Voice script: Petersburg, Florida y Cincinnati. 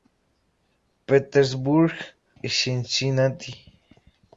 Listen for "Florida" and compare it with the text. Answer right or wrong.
wrong